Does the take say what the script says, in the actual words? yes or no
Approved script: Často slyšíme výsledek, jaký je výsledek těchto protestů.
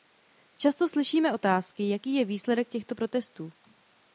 no